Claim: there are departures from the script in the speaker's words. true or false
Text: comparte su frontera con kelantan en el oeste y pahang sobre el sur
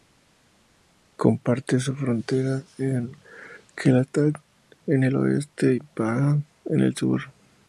true